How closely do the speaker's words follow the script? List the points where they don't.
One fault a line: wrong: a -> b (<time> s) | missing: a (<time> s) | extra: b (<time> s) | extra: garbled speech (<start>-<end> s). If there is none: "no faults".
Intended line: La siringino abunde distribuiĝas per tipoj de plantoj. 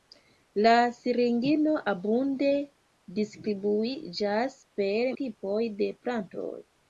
no faults